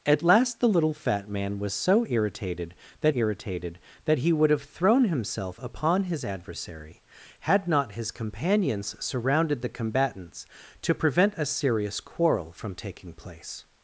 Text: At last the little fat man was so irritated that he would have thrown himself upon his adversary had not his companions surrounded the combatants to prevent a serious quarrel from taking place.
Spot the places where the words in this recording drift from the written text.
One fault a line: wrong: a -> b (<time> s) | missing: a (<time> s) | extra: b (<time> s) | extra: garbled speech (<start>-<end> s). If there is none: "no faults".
extra: irritated that (3.1 s)